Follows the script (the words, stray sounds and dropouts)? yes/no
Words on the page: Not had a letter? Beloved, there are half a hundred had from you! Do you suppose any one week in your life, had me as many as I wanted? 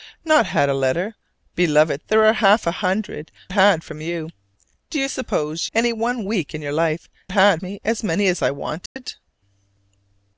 no